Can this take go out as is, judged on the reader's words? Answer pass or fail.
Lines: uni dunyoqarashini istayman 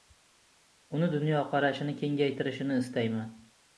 fail